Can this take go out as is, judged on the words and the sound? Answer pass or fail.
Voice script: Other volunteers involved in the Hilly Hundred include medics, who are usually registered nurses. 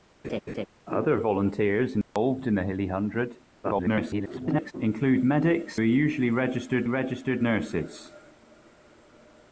fail